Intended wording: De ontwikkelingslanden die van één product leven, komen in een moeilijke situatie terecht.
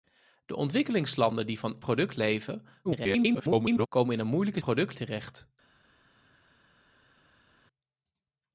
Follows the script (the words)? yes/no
no